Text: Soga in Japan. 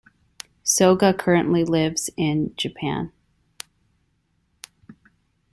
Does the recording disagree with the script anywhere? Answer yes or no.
yes